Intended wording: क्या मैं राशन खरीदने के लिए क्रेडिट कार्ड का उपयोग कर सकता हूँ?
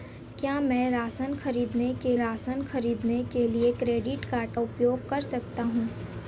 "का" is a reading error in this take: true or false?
true